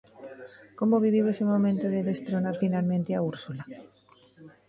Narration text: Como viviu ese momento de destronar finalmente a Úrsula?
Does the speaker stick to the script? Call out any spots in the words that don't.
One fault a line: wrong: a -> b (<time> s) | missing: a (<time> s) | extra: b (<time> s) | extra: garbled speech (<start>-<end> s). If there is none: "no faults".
no faults